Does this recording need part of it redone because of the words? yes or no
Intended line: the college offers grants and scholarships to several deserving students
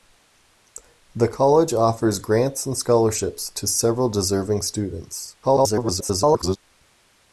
yes